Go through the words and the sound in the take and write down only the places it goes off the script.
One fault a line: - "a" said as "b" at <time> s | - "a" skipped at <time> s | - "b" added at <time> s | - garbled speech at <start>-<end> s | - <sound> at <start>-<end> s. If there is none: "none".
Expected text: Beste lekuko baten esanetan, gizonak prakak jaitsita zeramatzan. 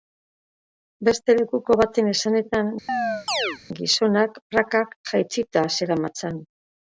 - chirp at 2.9-3.6 s